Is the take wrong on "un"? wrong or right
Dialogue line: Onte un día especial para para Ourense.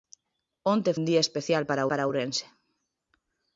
right